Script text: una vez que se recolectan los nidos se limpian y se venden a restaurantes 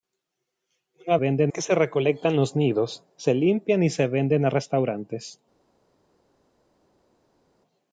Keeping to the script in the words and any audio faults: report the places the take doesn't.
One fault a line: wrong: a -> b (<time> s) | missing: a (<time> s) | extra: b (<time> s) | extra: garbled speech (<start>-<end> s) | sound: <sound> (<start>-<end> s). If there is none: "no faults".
wrong: vez -> venden (1.1 s)